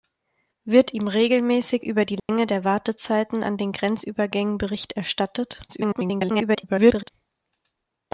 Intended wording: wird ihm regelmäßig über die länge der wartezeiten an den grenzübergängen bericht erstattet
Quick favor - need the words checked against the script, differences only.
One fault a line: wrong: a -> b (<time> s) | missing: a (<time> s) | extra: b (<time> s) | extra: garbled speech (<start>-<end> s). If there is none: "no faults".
extra: garbled speech (5.7-7.1 s)